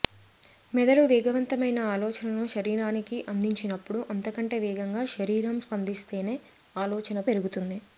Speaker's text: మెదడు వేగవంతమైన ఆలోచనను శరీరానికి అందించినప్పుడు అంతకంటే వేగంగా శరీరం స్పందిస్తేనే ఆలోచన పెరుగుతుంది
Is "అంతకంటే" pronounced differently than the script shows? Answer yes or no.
no